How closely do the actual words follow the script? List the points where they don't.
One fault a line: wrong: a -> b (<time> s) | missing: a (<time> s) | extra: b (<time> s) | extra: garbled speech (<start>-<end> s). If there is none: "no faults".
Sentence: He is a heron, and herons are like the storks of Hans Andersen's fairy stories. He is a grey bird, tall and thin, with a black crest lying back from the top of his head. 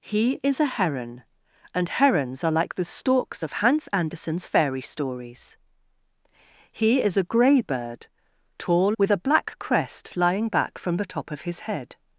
missing: and thin (9.0 s)